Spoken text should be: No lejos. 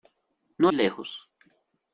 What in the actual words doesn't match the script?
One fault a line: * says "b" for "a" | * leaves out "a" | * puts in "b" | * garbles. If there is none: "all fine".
all fine